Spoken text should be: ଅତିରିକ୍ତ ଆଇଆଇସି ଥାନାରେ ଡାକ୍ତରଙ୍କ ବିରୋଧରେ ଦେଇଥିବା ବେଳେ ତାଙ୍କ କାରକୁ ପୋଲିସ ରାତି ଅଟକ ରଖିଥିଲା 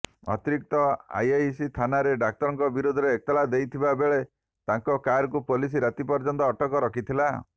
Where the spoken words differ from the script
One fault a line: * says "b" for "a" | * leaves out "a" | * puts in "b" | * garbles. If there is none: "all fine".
* puts in "ଏତଲା"
* puts in "ପର୍ଯ୍ୟନ୍ତ"